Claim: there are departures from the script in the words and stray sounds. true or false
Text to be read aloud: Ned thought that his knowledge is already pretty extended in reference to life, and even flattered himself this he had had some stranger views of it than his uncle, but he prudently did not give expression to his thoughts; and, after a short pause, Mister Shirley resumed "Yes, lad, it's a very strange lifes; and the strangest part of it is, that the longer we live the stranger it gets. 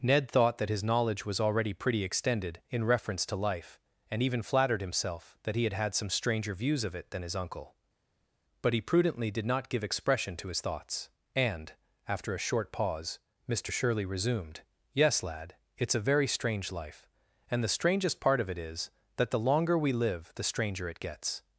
true